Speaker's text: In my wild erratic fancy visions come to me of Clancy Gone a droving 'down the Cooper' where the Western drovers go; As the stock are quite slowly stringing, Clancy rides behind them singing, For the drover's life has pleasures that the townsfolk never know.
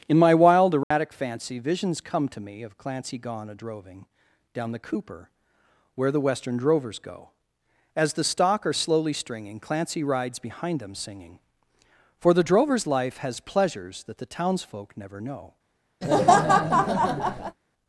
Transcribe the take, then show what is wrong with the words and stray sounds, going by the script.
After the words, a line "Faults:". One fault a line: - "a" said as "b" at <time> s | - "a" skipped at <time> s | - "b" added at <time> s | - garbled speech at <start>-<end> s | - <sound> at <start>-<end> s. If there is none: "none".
In my wild erratic fancy visions come to me of Clancy Gone a droving 'down the Cooper' where the Western drovers go; As the stock are slowly stringing, Clancy rides behind them singing, For the drover's life has pleasures that the townsfolk never know.
Faults:
- dropout at 0.8-0.9 s
- "quite" skipped at 8.7 s
- laugh at 16.0-17.6 s